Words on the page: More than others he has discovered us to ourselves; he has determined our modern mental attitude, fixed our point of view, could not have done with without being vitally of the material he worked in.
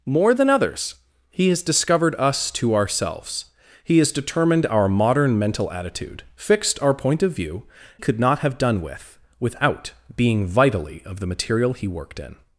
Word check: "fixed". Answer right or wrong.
right